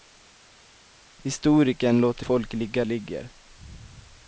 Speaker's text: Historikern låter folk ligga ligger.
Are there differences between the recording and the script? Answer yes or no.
no